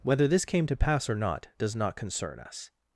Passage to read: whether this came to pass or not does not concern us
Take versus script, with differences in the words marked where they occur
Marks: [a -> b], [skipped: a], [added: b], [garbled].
whether this came to pass or not does not concern us